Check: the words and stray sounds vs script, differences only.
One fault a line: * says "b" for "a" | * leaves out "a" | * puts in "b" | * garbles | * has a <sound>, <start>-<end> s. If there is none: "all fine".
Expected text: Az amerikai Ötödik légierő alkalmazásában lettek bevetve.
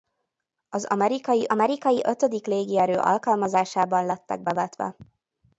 * puts in "amerikai"